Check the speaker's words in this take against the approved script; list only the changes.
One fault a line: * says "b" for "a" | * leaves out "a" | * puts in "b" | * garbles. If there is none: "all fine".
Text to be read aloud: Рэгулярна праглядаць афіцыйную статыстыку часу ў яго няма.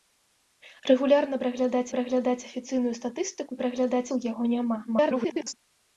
* puts in "праглядаць"
* says "праглядаць" for "часу"
* garbles